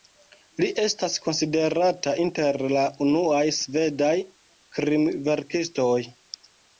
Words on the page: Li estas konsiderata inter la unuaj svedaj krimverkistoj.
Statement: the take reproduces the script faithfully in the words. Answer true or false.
true